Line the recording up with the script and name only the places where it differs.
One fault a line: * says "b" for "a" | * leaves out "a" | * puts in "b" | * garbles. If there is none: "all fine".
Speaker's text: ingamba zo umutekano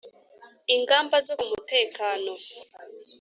all fine